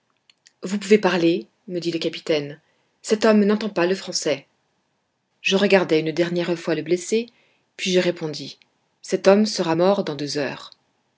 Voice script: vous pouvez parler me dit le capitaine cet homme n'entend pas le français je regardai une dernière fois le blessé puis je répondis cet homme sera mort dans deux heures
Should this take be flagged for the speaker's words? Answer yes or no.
no